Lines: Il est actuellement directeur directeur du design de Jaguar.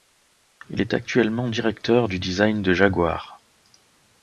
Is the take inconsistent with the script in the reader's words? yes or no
yes